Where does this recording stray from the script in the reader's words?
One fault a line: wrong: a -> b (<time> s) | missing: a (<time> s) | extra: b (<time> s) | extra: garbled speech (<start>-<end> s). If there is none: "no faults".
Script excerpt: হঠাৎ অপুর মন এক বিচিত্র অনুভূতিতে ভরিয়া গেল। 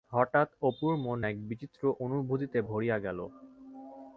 no faults